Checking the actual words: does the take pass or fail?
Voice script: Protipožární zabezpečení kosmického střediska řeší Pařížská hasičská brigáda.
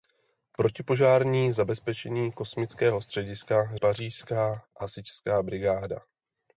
fail